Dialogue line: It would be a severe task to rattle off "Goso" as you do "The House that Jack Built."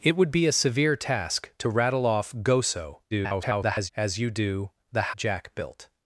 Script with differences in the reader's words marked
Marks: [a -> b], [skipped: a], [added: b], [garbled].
It would be a severe task to rattle off "Goso" [garbled] as you do "The [skipped: House that] Jack Built."